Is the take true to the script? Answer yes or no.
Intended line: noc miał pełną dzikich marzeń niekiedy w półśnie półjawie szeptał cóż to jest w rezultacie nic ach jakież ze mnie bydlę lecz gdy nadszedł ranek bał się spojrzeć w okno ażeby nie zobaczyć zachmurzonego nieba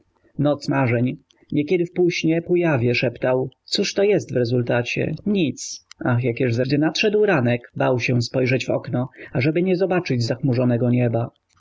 no